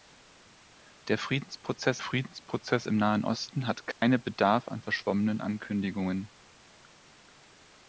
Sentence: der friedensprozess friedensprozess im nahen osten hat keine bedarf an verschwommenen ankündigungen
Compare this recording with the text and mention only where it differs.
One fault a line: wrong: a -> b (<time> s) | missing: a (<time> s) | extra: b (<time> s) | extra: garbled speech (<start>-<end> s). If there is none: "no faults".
no faults